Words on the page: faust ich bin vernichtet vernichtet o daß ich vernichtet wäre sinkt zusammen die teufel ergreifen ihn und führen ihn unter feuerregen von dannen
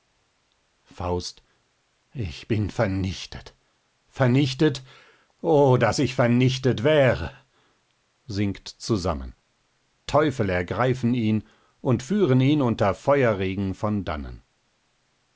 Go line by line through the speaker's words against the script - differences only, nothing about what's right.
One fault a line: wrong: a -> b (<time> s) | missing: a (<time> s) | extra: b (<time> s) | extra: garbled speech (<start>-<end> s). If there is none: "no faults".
missing: die (9.3 s)